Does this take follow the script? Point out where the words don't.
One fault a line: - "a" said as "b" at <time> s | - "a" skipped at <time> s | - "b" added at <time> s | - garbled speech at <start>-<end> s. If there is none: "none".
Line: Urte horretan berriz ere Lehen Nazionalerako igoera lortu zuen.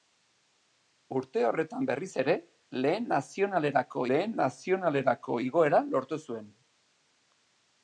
- "Lehen Nazionalerako" added at 4.1 s